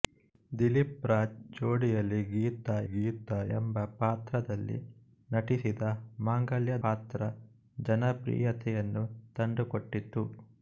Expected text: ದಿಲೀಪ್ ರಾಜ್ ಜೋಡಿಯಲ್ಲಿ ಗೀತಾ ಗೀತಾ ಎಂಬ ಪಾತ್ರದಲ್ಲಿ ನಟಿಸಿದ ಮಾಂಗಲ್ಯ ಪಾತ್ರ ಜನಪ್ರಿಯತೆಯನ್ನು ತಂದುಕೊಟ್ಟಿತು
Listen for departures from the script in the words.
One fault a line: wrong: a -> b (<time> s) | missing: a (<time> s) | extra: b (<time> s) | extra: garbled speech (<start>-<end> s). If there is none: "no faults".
no faults